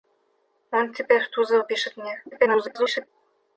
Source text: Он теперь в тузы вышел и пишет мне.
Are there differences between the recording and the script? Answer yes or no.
yes